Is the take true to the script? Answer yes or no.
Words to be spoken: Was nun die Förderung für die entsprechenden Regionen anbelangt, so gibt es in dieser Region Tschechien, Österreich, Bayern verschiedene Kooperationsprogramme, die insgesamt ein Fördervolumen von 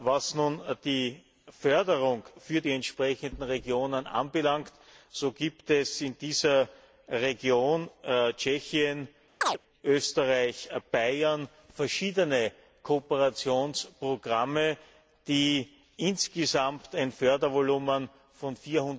yes